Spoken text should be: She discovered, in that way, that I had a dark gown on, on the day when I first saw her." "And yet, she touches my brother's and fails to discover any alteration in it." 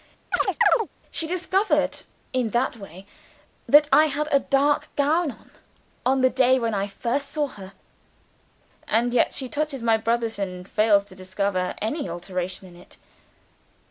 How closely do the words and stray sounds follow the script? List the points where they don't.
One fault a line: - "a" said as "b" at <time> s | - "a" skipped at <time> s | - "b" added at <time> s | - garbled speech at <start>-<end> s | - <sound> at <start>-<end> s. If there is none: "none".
- chirp at 0.3-0.9 s